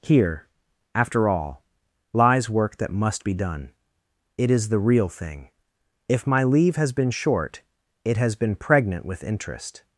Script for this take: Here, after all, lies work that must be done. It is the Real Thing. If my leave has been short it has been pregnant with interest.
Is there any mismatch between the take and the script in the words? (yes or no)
no